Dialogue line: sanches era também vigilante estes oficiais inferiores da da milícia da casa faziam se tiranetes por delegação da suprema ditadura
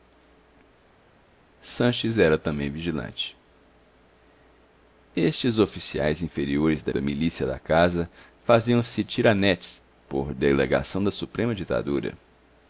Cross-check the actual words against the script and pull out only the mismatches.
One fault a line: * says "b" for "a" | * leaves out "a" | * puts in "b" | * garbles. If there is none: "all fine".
all fine